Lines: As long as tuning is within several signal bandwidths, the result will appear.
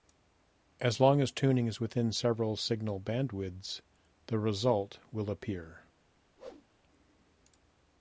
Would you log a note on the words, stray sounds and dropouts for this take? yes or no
yes